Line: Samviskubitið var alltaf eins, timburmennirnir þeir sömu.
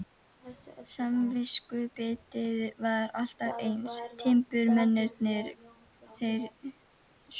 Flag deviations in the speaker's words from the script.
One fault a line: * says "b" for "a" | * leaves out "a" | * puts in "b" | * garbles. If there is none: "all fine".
all fine